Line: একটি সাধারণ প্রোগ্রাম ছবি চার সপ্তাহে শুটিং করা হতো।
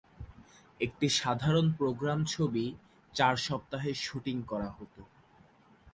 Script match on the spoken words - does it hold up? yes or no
yes